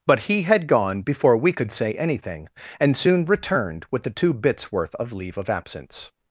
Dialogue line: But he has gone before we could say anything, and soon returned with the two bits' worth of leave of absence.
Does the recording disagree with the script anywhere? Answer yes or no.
yes